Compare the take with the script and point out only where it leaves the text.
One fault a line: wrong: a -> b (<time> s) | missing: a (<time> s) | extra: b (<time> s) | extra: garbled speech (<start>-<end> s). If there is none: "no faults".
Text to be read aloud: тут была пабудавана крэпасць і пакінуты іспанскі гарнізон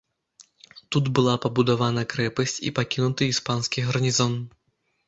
no faults